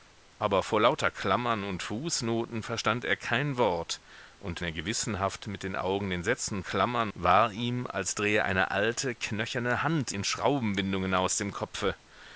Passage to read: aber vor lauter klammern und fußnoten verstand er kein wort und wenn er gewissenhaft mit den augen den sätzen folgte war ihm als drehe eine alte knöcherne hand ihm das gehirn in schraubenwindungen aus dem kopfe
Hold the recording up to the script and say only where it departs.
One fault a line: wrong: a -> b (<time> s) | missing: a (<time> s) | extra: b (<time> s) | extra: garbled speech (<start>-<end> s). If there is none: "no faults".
missing: wenn (4.6 s)
wrong: folgte -> klammern (6.6 s)
missing: ihm das gehirn (10.1 s)